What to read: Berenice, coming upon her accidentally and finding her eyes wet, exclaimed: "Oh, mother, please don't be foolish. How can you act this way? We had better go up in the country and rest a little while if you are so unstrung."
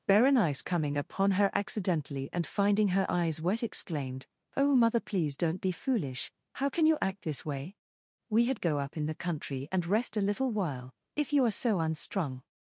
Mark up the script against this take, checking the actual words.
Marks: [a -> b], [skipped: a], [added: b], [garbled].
Berenice, coming upon her accidentally and finding her eyes wet, exclaimed: "Oh, mother, please don't be foolish. How can you act this way? We had [skipped: better] go up in the country and rest a little while if you are so unstrung."